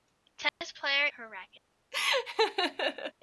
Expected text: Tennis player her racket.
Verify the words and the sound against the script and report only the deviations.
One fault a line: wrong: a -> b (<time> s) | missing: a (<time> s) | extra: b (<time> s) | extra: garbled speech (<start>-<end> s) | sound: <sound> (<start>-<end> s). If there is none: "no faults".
sound: dropout (0.5-0.6 s)
sound: laugh (1.9-3.1 s)